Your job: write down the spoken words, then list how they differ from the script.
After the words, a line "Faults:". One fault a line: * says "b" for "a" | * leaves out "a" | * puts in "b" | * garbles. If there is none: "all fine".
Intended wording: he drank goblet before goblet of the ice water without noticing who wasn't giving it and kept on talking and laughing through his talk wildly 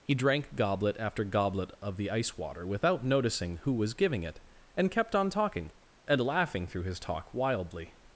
he drank goblet after goblet of the ice water without noticing who was giving it and kept on talking and laughing through his talk wildly
Faults:
* says "after" for "before"
* says "was" for "wasn't"